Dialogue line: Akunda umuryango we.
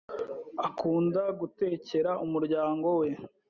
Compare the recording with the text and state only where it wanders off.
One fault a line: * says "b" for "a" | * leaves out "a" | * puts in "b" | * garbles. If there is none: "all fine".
* puts in "gutekera"